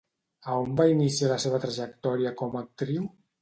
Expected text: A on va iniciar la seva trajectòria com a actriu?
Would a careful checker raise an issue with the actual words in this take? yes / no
no